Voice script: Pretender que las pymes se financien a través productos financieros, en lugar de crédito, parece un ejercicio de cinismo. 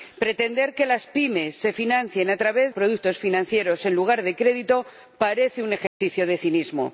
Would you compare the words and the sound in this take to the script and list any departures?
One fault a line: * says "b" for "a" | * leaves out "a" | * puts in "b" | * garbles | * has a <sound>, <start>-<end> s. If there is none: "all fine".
* has a dropout, 5.9-6.0 s